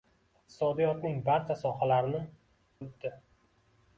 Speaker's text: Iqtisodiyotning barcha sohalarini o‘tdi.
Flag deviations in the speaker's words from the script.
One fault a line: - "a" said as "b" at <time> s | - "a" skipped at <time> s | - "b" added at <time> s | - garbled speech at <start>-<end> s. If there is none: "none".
none